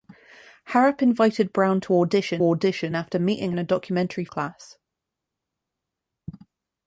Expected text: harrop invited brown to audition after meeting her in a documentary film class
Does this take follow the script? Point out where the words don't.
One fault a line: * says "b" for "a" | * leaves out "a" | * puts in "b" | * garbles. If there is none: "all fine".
* puts in "audition"
* leaves out "her"
* leaves out "film"